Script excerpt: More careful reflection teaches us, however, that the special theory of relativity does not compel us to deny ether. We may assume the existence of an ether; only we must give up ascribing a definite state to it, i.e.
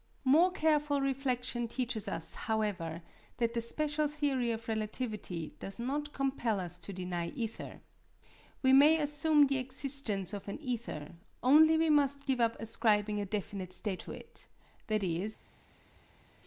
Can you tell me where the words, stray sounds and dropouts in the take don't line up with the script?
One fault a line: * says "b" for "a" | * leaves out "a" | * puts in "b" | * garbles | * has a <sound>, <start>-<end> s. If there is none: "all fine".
all fine